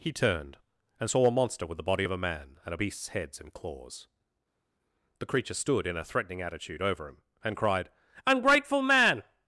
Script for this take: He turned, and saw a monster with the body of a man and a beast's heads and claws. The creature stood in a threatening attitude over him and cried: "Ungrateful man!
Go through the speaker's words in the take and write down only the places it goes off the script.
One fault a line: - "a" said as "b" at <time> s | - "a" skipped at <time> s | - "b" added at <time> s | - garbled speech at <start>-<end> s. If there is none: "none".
none